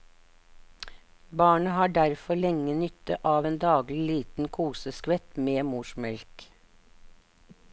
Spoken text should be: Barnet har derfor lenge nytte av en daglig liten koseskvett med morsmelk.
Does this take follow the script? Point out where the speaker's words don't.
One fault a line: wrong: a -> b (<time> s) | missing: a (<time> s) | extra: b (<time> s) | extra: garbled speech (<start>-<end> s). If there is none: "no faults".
no faults